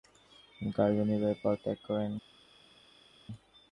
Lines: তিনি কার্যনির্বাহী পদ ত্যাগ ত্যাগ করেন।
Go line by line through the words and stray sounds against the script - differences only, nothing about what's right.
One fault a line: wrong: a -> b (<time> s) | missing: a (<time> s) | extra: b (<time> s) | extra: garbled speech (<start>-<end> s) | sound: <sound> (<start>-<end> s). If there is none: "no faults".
missing: ত্যাগ (1.8 s)